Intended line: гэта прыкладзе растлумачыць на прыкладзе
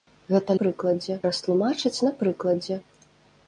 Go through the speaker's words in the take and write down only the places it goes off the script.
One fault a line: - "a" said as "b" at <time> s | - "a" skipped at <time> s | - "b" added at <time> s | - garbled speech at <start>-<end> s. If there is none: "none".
none